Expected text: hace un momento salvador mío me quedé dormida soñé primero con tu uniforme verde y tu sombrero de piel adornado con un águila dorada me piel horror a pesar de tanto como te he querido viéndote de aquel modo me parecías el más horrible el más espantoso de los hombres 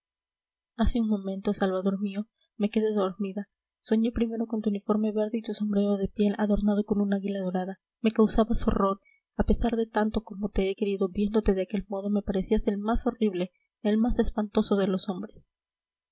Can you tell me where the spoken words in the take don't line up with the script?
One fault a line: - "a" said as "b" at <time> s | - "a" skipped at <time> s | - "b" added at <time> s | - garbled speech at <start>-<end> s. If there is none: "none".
- "piel" said as "causabas" at 8.1 s